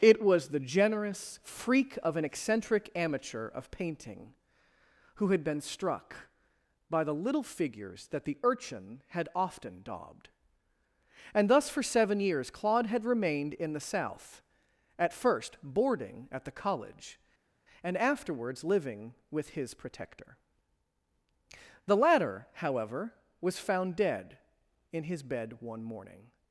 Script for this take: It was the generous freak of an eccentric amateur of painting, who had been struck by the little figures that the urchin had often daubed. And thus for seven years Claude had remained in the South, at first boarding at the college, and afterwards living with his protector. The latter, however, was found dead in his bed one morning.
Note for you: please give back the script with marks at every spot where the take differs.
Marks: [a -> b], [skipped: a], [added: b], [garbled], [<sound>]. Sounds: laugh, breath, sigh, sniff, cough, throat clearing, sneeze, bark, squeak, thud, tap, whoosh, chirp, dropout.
It was the generous freak of an eccentric amateur of painting, who had been struck by the little figures that the urchin had often daubed. And thus for seven years Claude had remained in the South, at first boarding at the college, and afterwards living with his protector. The latter, however, was found dead in his bed one morning.